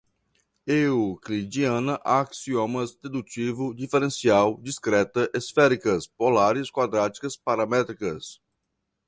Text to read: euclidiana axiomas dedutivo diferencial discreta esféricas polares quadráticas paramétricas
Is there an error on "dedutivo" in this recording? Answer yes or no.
no